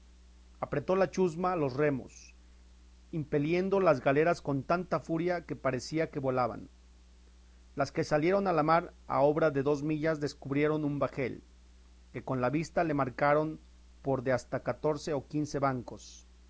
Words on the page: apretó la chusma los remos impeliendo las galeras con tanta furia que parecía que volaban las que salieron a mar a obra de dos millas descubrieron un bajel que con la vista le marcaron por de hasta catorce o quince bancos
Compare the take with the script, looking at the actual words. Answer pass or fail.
fail